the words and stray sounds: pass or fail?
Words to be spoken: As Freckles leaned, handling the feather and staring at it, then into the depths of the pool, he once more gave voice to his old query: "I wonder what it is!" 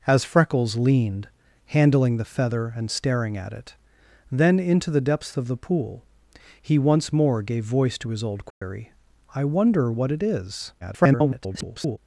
fail